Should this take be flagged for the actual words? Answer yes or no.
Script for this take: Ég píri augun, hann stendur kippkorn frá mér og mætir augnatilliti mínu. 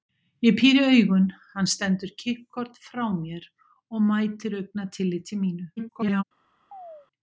yes